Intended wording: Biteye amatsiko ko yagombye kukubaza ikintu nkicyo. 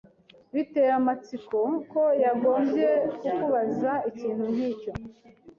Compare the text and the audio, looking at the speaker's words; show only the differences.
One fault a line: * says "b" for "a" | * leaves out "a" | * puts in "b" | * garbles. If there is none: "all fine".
all fine